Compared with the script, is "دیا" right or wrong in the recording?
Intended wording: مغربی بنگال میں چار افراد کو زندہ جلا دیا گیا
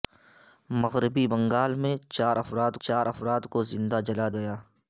wrong